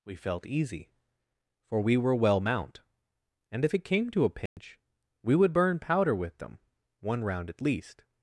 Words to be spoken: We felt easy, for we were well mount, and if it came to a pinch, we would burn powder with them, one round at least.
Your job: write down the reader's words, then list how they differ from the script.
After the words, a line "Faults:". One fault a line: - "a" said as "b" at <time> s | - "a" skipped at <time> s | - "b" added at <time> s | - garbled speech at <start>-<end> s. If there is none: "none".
We felt easy, for we were well mount, and if it came to a pinch, we would burn powder with them, one round at least.
Faults:
none